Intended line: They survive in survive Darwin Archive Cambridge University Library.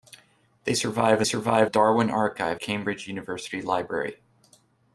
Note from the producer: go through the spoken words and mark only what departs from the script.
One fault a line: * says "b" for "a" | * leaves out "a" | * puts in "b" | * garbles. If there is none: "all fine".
all fine